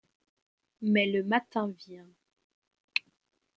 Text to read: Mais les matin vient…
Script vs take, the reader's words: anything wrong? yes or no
yes